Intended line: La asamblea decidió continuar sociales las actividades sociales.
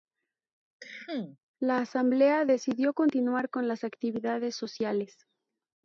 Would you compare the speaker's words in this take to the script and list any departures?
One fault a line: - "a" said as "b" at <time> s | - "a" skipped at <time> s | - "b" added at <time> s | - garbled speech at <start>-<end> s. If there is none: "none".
- "sociales" said as "con" at 3.5 s